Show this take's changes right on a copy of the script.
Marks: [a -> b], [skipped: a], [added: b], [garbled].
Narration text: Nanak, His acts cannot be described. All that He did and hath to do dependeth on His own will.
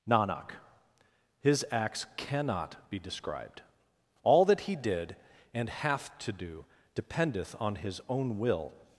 Nanak, His acts cannot be described. All that He did and hath to do dependeth on His own will.